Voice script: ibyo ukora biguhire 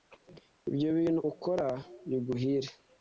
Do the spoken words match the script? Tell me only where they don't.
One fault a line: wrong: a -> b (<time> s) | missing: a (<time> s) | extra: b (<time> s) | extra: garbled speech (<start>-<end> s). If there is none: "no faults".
extra: bintu (1.0 s)